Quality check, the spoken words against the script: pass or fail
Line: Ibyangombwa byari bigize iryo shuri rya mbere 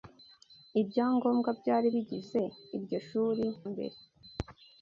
fail